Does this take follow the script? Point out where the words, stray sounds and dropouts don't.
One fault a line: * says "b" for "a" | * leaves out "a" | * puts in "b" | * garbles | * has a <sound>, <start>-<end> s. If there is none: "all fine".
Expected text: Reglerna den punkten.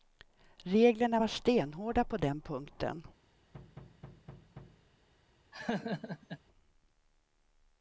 * puts in "var stenhårda på"
* has a thud, 3.5-4.9 s
* has a laugh, 5.5-6.4 s